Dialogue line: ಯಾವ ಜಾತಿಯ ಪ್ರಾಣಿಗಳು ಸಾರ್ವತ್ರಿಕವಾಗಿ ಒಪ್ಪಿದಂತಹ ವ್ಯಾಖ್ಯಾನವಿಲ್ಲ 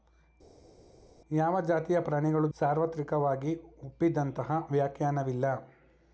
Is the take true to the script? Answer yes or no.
yes